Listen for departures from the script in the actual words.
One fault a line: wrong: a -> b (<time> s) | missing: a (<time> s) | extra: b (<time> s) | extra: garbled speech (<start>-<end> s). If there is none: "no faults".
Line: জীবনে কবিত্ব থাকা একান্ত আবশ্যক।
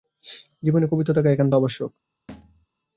no faults